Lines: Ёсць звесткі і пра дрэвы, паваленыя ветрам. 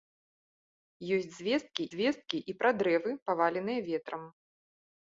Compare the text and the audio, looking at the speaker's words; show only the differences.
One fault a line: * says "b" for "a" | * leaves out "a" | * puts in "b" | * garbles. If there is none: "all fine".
* puts in "звесткі"